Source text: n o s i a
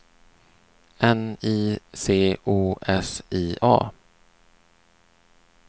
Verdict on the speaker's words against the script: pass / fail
fail